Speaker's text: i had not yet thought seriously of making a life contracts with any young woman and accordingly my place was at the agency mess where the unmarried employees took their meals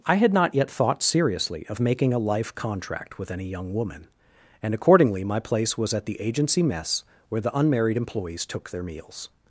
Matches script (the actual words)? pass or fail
fail